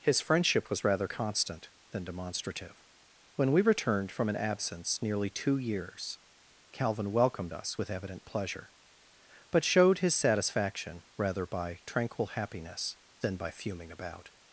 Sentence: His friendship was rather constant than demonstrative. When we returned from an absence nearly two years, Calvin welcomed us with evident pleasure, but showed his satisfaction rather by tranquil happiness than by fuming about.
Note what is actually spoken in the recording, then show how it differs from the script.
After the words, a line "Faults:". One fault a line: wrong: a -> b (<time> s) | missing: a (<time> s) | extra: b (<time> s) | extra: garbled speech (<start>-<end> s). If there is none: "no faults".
His friendship was rather constant than demonstrative. When we returned from an absence nearly two years, Calvin welcomed us with evident pleasure, but showed his satisfaction rather by tranquil happiness than by fuming about.
Faults:
no faults